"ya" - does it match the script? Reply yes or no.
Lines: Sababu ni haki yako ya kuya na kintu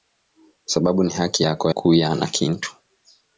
no